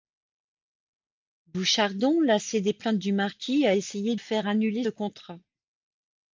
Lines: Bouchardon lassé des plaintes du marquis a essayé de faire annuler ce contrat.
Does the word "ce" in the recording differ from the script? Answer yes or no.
yes